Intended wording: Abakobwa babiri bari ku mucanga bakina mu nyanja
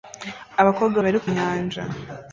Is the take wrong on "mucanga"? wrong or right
wrong